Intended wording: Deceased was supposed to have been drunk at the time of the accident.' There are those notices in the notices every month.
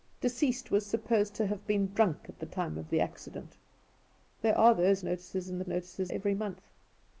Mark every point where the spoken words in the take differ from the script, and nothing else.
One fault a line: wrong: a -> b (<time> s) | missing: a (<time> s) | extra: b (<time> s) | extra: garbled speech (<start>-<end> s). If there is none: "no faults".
no faults